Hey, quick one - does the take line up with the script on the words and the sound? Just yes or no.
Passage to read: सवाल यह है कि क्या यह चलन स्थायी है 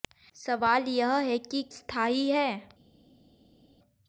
no